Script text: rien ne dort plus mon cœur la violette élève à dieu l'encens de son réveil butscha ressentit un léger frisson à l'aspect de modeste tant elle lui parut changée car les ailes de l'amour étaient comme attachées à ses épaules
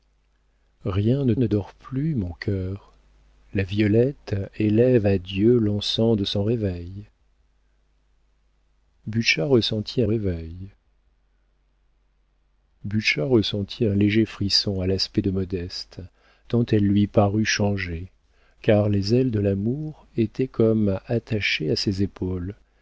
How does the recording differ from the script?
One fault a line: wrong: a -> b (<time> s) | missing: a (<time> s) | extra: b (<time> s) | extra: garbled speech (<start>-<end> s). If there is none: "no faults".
extra: ne (1.4 s)
extra: réveil butscha ressentit (10.0 s)